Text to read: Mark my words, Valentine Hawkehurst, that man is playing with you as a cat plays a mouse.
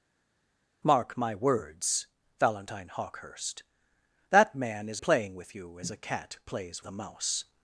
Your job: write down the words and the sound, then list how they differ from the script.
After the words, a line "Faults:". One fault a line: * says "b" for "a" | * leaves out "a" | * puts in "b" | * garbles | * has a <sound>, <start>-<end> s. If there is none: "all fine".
Mark my words, Valentine Hawkehurst, that man is playing with you as a cat plays a mouse.
Faults:
all fine